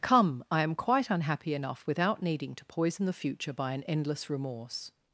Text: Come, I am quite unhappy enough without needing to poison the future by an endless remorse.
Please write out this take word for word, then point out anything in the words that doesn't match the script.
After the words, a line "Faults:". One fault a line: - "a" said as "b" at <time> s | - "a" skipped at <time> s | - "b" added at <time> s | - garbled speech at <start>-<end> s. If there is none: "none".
Come, I am quite unhappy enough without needing to poison the future by an endless remorse.
Faults:
none